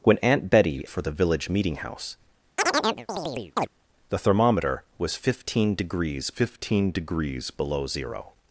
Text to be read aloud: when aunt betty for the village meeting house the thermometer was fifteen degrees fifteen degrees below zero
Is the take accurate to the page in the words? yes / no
yes